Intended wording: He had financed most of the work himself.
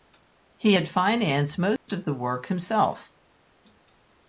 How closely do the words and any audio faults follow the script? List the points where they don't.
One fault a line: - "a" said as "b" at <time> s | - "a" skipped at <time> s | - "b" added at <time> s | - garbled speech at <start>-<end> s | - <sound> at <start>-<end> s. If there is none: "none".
- dropout at 1.8-1.9 s